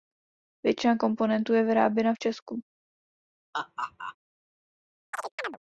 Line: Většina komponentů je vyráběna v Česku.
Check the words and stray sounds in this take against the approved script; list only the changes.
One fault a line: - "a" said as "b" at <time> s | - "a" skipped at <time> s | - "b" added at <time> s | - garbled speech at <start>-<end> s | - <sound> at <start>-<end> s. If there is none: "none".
- laugh at 3.5-4.2 s
- chirp at 5.1-5.6 s